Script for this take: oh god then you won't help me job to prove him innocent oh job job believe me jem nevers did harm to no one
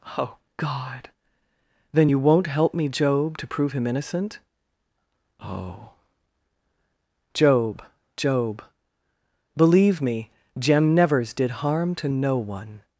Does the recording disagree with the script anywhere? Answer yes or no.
no